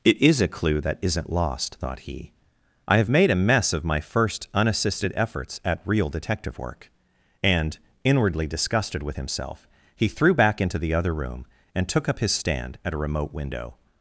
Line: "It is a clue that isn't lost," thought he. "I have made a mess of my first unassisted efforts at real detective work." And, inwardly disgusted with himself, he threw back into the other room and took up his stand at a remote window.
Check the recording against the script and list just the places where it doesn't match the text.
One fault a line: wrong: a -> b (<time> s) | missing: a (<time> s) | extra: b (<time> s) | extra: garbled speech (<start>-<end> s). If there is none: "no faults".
no faults